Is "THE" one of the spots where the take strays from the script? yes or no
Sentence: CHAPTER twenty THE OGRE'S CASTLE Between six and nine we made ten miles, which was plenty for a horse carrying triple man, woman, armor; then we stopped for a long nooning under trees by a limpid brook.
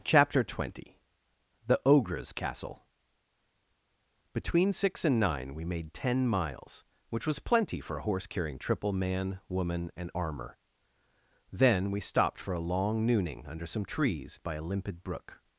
no